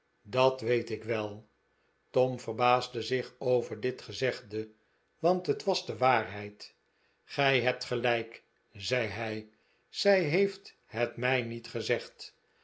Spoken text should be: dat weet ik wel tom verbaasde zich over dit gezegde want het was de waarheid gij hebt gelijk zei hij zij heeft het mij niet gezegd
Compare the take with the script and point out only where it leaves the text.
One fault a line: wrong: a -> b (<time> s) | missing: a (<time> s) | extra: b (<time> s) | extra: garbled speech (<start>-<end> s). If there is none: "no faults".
no faults